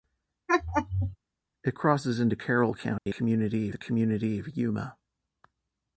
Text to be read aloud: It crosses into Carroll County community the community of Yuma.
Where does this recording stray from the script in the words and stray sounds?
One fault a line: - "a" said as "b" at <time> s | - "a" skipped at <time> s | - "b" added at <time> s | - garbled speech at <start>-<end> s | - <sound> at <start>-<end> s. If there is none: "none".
- laugh at 0.5-1.2 s
- dropout at 3.0-3.1 s